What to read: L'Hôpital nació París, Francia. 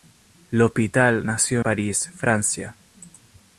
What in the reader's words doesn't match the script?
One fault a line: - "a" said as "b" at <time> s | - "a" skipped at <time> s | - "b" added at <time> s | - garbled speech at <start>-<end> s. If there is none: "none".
none